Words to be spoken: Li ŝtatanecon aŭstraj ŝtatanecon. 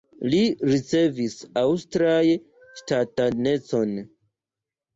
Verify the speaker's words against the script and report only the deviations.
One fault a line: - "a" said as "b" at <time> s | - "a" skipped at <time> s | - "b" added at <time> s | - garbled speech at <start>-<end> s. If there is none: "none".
- "ŝtatanecon" said as "ricevis" at 0.7 s